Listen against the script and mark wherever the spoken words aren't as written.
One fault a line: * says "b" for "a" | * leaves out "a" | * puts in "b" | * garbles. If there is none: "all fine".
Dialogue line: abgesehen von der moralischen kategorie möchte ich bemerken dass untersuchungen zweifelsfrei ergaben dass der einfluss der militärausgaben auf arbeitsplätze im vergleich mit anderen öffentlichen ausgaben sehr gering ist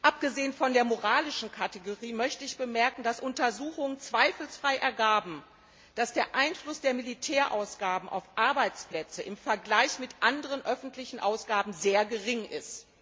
all fine